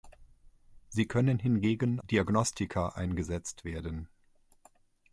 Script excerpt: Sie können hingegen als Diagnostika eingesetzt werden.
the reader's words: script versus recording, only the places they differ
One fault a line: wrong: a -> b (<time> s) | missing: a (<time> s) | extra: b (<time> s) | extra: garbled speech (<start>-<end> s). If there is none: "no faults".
missing: als (2.0 s)